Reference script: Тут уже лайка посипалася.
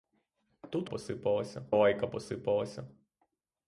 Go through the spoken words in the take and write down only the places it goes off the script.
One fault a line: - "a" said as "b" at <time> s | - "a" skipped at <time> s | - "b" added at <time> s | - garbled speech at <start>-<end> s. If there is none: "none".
- "уже" said as "посипалася" at 0.8 s